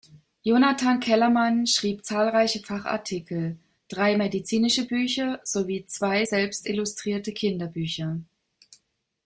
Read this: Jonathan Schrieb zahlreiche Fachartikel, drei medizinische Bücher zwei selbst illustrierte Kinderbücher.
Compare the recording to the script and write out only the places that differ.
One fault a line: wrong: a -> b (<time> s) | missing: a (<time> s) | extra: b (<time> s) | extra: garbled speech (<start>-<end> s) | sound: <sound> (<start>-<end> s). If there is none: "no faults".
extra: Kellerman (1.0 s)
extra: sowie (5.4 s)